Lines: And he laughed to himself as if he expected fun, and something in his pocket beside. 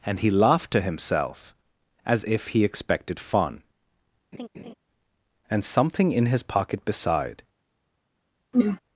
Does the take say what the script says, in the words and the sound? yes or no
no